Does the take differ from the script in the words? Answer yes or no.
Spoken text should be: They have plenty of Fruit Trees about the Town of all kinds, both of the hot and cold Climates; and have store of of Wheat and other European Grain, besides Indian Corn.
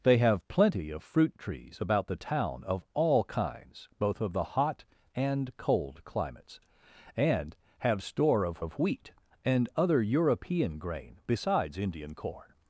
no